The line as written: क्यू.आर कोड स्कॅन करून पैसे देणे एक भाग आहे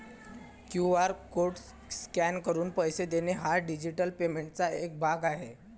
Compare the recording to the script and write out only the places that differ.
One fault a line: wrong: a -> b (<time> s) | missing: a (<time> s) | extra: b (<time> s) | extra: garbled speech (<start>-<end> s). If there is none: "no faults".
extra: हा डिजिटल पेमेंटचा (3.3 s)